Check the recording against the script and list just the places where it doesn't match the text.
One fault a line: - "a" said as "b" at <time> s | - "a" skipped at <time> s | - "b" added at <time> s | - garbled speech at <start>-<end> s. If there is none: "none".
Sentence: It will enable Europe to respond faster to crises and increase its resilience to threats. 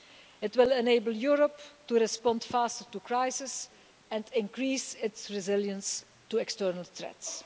- "external" added at 6.4 s